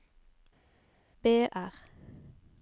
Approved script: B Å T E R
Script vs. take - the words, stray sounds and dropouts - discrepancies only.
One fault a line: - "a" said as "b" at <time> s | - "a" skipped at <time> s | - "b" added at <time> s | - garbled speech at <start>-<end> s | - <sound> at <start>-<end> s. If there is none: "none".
- "Å T E" skipped at 1.5 s